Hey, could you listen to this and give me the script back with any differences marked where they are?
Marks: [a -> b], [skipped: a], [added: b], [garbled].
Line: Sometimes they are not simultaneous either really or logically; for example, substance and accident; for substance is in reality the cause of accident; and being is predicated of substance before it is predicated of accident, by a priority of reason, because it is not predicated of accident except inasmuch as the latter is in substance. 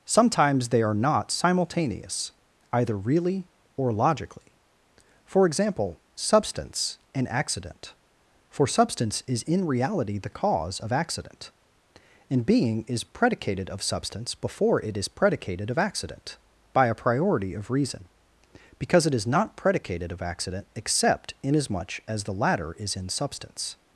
Sometimes they are not simultaneous either really or logically; for example, substance and accident; for substance is in reality the cause of accident; and being is predicated of substance before it is predicated of accident, by a priority of reason, because it is not predicated of accident except inasmuch as the latter is in substance.